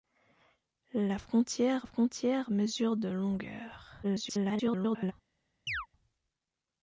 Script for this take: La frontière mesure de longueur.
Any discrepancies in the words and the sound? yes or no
yes